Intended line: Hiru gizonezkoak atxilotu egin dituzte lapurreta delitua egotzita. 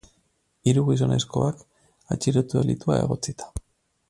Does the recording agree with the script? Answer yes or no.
no